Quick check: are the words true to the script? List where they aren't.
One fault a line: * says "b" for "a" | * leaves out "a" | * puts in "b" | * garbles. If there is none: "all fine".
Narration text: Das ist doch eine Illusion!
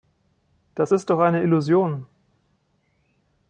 all fine